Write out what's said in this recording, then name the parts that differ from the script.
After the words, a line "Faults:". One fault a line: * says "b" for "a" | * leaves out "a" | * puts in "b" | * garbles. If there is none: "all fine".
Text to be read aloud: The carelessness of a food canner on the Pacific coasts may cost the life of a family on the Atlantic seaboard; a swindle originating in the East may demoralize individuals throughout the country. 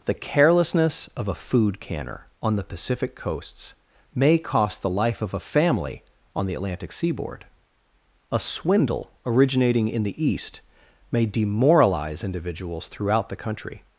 The carelessness of a food canner on the Pacific coasts may cost the life of a family on the Atlantic seaboard; a swindle originating in the East may demoralize individuals throughout the country.
Faults:
all fine